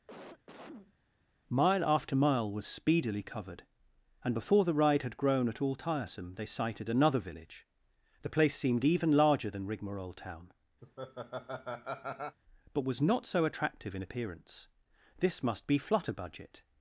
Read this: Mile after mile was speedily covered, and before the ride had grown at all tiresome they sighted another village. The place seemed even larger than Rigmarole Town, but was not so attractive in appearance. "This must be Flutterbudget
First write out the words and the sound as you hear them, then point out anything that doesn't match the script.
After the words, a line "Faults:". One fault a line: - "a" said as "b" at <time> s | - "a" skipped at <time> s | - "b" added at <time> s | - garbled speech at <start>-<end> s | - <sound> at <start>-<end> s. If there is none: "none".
Mile after mile was speedily covered, and before the ride had grown at all tiresome they sighted another village. The place seemed even larger than Rigmarole Town, but was not so attractive in appearance. "This must be Flutterbudget
Faults:
- cough at 0.1-0.9 s
- laugh at 10.8-12.4 s